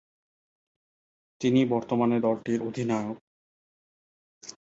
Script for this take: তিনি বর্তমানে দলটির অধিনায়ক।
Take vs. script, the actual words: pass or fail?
pass